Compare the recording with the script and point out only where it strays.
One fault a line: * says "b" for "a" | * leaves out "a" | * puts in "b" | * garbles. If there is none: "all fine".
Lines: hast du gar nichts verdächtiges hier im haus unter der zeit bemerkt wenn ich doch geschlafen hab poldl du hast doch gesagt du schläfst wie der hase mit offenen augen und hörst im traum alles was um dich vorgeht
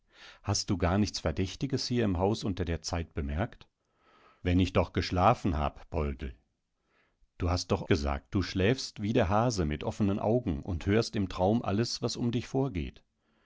all fine